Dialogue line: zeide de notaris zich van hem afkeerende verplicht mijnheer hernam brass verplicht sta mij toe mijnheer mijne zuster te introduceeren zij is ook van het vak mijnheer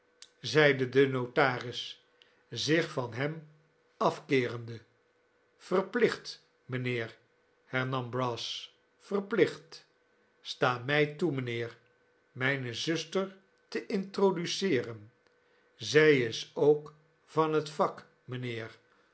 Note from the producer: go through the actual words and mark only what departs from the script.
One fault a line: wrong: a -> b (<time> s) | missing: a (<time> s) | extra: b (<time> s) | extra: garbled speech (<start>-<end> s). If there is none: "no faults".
no faults